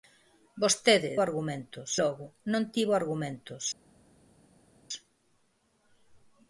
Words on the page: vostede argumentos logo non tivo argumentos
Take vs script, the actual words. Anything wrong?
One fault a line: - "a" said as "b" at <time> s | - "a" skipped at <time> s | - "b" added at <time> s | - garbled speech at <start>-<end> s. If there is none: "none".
none